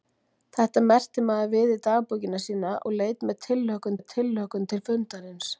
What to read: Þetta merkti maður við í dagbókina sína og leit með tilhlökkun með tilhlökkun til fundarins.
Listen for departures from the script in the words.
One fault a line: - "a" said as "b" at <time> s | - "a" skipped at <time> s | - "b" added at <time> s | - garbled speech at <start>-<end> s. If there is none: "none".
none